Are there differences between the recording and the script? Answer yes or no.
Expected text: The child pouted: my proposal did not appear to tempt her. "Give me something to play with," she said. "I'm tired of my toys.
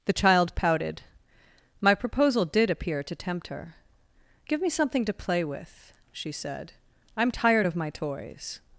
yes